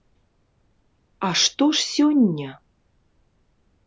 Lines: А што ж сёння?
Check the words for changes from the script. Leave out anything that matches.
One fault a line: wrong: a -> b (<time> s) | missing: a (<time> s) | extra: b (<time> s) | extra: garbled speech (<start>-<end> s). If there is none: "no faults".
no faults